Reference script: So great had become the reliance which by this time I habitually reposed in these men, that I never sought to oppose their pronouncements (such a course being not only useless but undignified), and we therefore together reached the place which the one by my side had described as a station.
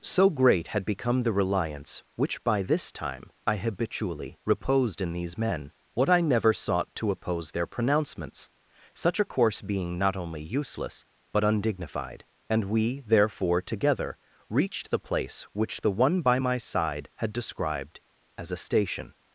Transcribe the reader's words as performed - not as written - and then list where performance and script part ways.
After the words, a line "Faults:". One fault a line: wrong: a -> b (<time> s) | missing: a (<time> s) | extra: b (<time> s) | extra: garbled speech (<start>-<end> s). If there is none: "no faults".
So great had become the reliance which by this time I habitually reposed in these men, what I never sought to oppose their pronouncements (such a course being not only useless but undignified), and we therefore together reached the place which the one by my side had described as a station.
Faults:
wrong: that -> what (5.9 s)